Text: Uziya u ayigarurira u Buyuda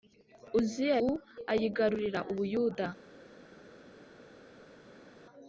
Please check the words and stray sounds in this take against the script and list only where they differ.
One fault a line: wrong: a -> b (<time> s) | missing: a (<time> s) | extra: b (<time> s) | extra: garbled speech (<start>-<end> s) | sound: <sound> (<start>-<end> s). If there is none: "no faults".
no faults